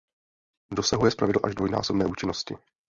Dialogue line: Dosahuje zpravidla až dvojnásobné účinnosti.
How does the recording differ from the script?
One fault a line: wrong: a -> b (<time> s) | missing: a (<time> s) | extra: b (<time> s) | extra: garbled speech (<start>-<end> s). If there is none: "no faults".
no faults